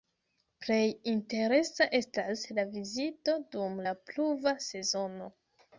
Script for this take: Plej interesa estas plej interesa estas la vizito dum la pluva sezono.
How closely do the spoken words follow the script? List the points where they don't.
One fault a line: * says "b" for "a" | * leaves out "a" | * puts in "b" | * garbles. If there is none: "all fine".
* leaves out "plej interesa estas"